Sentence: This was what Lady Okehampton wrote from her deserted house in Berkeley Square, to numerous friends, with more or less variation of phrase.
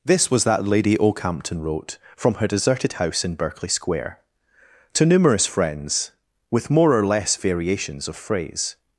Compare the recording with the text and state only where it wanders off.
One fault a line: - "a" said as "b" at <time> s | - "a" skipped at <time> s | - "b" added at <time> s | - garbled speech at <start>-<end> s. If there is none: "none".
- "what" said as "that" at 0.5 s
- "variation" said as "variations" at 7.4 s